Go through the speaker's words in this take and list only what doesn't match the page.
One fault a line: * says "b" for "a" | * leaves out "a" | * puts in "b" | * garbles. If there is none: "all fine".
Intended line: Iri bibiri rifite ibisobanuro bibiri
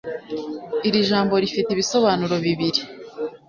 * says "jambo" for "bibiri"